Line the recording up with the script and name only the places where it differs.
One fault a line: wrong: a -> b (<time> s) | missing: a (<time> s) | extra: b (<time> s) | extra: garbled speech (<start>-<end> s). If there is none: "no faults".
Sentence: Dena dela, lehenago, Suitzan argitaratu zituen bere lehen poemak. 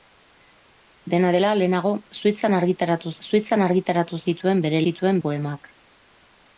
extra: Suitzan argitaratu (3.3 s)
wrong: lehen -> zituen (4.9 s)